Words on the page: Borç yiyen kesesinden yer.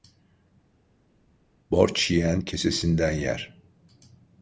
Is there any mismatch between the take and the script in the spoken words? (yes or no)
no